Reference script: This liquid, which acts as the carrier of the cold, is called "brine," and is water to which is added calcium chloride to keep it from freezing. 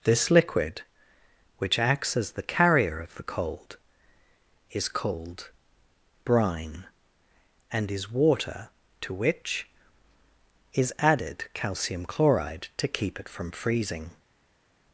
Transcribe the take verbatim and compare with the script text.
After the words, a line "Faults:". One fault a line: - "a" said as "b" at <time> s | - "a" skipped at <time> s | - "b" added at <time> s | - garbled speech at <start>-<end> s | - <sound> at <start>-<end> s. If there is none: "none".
This liquid, which acts as the carrier of the cold, is called "brine," and is water to which is added calcium chloride to keep it from freezing.
Faults:
none